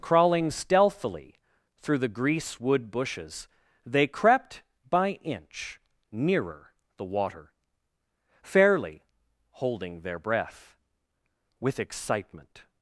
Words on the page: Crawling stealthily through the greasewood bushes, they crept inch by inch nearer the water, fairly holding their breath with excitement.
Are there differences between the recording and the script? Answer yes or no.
yes